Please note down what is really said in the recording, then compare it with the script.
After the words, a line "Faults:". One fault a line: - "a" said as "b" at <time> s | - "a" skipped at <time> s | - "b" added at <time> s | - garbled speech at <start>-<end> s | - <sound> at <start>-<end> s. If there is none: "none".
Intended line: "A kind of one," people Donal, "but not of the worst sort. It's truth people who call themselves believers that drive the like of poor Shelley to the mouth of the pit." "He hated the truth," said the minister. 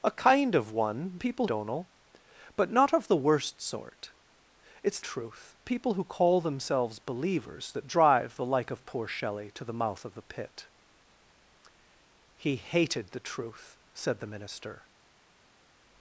"A kind of one," people Donal, "but not of the worst sort. It's truth people who call themselves believers that drive the like of poor Shelley to the mouth of the pit." "He hated the truth," said the minister.
Faults:
none